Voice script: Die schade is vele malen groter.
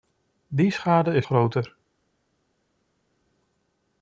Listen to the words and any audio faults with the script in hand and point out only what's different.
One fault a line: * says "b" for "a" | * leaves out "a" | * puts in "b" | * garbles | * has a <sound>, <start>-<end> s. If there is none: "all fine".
* leaves out "vele malen"